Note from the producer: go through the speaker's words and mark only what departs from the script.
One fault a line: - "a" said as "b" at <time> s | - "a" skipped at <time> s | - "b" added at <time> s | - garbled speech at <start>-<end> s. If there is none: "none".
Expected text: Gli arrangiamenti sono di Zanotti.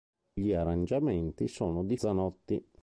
none